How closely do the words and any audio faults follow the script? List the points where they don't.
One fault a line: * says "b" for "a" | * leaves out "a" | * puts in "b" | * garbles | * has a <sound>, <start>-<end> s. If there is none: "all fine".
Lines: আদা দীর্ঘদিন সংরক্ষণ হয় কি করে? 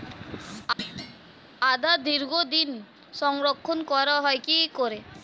* has a thud, 0.8-1.5 s
* puts in "করা"